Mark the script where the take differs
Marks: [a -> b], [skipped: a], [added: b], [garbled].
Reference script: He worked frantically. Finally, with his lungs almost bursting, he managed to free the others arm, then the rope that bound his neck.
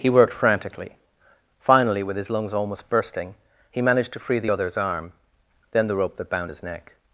He worked frantically. Finally, with his lungs almost bursting, he managed to free the others arm, then the rope that bound his neck.